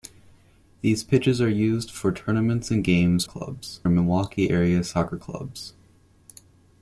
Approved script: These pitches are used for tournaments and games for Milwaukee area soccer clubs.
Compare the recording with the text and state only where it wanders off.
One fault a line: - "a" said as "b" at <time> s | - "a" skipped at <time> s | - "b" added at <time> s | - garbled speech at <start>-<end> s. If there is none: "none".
- "for" said as "clubs" at 3.2 s